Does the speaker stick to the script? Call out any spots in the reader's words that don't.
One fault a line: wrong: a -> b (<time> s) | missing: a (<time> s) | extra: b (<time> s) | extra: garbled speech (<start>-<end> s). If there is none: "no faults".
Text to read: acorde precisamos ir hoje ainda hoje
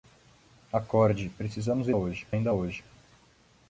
no faults